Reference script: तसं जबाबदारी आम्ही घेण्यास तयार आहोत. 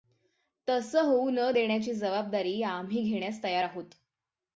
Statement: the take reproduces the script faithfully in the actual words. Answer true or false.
false